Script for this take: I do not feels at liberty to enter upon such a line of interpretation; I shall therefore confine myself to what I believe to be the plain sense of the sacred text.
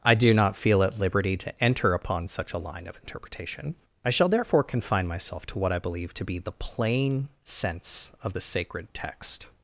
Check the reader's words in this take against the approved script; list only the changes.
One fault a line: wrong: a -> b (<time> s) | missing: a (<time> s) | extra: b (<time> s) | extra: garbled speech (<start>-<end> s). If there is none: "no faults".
wrong: feels -> feel (0.6 s)